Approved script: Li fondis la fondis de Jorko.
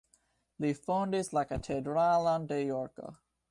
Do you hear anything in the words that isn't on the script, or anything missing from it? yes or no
yes